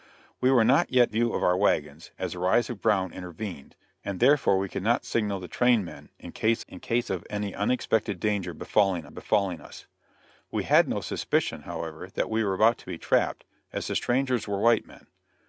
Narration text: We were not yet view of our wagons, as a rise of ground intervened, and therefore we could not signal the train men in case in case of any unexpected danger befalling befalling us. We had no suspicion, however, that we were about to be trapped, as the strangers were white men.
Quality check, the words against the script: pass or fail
pass